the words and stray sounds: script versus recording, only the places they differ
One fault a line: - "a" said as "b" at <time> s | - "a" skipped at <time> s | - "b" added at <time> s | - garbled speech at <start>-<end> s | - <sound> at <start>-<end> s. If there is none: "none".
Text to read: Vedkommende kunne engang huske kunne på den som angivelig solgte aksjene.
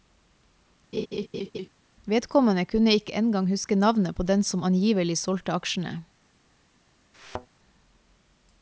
- laugh at 0.9-1.7 s
- "ikke" added at 2.9 s
- "kunne" said as "navnet" at 3.8 s
- thud at 7.1-7.5 s